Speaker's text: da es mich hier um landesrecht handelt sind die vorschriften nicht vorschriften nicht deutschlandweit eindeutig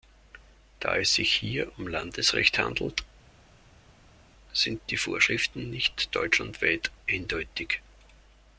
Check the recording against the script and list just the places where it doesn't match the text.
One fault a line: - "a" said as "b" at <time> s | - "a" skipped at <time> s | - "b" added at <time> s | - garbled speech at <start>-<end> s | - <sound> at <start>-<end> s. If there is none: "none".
- "mich" said as "sich" at 1.1 s
- "vorschriften nicht" skipped at 6.1 s